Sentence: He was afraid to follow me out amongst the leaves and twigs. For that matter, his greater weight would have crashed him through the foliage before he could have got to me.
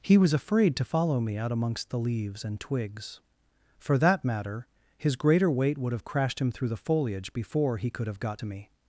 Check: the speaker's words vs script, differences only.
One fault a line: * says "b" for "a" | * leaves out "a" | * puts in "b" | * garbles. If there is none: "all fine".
all fine